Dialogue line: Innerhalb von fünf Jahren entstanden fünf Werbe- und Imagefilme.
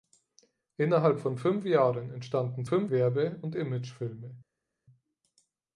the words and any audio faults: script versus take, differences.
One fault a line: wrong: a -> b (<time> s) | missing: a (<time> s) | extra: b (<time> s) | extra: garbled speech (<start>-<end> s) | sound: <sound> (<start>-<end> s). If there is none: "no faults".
no faults